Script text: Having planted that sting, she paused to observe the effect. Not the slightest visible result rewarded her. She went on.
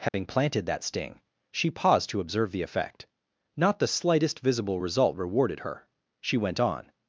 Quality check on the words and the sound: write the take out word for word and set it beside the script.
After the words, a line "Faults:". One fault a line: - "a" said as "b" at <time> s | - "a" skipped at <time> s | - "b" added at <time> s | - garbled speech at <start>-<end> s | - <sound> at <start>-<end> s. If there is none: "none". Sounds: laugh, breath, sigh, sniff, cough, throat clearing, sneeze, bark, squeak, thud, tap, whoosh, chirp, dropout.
Having planted that sting, she paused to observe the effect. Not the slightest visible result rewarded her. She went on.
Faults:
- dropout at 0.1-0.1 s